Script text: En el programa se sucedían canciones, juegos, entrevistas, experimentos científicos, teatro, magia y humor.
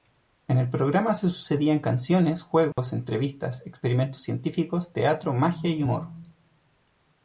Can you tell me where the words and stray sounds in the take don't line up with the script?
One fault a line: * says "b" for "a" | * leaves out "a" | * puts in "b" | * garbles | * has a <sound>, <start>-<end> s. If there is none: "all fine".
* has a dropout, 2.7-2.8 s